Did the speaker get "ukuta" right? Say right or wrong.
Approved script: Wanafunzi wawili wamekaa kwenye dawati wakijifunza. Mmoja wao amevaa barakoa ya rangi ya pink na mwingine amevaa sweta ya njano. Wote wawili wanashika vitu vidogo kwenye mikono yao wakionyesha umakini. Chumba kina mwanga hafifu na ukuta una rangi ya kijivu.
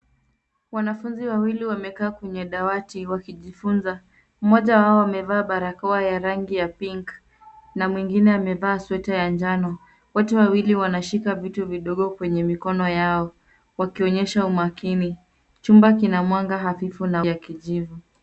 wrong